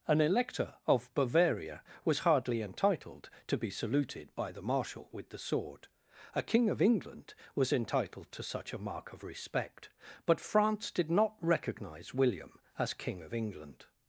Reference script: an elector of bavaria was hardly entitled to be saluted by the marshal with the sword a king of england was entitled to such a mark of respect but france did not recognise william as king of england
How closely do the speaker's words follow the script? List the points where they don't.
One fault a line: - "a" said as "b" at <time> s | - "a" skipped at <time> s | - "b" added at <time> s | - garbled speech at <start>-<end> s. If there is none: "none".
none